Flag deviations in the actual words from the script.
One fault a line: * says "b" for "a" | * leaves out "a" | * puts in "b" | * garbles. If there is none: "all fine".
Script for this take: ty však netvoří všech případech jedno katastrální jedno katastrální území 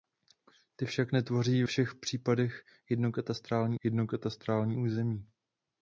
all fine